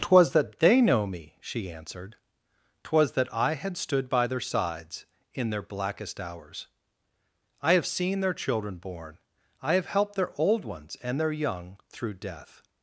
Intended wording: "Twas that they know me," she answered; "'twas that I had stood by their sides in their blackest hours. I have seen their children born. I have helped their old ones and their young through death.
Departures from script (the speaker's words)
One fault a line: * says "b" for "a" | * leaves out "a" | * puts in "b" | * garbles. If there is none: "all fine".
all fine